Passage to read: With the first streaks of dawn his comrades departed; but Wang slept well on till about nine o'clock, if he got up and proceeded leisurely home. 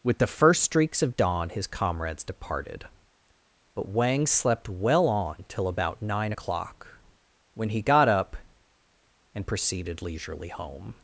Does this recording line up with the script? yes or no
no